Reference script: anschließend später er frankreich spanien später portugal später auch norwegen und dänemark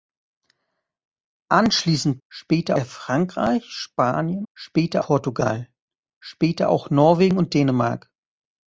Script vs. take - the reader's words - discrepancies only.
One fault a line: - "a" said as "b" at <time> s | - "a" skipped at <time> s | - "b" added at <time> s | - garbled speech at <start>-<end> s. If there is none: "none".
none